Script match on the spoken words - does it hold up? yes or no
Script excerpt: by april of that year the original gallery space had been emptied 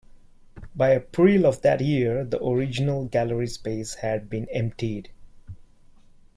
yes